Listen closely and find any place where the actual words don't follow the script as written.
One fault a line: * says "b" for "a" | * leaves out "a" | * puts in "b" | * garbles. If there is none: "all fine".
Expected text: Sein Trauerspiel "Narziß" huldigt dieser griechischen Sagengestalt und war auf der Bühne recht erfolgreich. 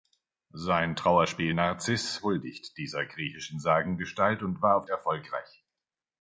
* leaves out "der Bühne recht"